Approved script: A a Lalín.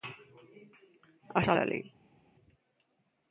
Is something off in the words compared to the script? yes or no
no